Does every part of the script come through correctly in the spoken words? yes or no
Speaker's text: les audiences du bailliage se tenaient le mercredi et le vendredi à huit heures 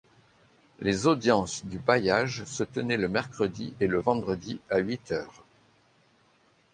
yes